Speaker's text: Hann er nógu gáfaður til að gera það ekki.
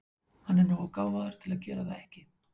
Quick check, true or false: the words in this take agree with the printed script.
true